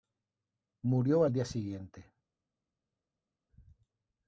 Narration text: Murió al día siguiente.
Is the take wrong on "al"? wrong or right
right